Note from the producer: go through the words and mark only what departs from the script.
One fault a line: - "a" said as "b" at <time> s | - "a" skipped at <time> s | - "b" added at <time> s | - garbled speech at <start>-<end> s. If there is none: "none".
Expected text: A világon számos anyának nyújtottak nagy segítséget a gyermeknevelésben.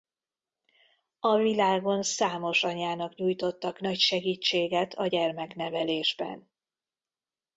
none